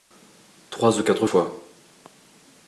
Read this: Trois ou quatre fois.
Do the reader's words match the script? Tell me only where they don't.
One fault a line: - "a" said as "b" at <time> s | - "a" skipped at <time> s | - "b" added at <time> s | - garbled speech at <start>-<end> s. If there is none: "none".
none